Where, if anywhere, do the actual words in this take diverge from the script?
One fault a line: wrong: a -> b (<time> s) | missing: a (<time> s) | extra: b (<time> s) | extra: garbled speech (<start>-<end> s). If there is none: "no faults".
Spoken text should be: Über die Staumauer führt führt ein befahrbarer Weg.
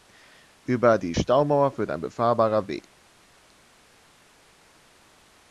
missing: führt (1.9 s)